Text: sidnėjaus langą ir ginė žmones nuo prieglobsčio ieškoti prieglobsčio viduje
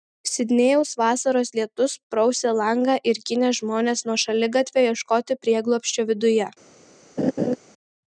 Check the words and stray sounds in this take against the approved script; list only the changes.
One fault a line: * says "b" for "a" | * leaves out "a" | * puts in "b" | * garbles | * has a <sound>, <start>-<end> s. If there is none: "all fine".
* puts in "vasaros lietus prausė"
* says "šaligatvio" for "prieglobsčio"
* has a laugh, 7.2-7.6 s